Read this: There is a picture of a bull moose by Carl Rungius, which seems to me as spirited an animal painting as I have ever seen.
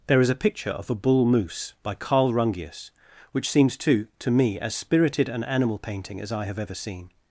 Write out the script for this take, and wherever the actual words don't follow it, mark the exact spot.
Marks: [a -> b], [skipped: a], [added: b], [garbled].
There is a picture of a bull moose by Carl Rungius, which seems to [added: to] me as spirited an animal painting as I have ever seen.